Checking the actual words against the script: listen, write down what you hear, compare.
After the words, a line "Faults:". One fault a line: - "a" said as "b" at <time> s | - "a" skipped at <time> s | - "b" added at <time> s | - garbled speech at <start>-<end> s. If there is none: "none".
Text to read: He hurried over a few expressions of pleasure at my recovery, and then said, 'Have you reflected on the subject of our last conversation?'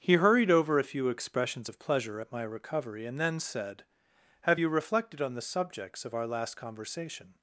He hurried over a few expressions of pleasure at my recovery, and then said, 'Have you reflected on the subjects of our last conversation?'
Faults:
- "subject" said as "subjects" at 5.4 s